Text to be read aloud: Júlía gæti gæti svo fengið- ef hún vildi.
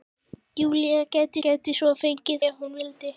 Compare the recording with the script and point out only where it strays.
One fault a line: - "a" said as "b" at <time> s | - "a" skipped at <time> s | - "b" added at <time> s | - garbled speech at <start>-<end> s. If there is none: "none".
none